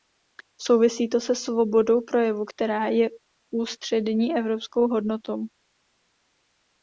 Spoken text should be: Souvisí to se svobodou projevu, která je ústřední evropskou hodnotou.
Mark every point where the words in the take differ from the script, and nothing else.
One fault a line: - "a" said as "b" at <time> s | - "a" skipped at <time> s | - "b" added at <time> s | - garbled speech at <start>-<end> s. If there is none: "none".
none